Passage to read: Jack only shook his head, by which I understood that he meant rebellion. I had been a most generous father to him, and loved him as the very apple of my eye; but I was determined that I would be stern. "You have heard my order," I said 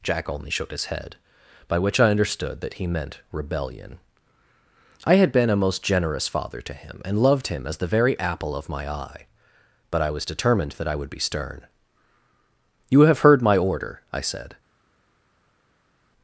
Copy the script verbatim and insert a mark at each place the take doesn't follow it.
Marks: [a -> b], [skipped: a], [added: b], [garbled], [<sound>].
Jack only shook his head, by which I understood that he meant rebellion. I had been a most generous father to him, and loved him as the very apple of my eye; but I was determined that I would be stern. "You have heard my order," I said